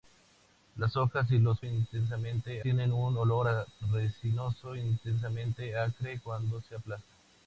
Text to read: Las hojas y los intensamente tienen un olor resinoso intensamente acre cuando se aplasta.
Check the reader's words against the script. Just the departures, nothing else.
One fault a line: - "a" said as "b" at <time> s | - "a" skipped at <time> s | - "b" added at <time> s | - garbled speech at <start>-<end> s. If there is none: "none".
none